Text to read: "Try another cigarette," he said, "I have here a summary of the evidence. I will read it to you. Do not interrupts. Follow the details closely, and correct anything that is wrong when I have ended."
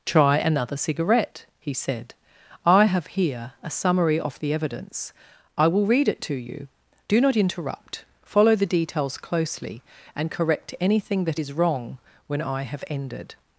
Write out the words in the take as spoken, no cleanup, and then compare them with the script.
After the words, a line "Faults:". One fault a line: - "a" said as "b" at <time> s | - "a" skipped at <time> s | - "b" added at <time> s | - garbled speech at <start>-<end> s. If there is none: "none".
"Try another cigarette," he said, "I have here a summary of the evidence. I will read it to you. Do not interrupt. Follow the details closely, and correct anything that is wrong when I have ended."
Faults:
- "interrupts" said as "interrupt" at 7.3 s